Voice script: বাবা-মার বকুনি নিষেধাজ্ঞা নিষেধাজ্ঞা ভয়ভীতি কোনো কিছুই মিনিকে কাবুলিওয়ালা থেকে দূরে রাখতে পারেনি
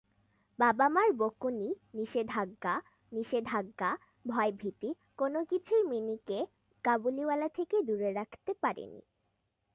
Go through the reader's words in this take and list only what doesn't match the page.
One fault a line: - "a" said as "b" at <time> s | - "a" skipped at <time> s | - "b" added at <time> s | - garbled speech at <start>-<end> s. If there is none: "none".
none